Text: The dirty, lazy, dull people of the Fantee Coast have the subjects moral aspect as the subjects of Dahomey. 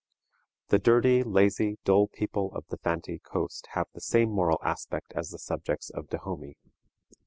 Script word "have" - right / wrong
right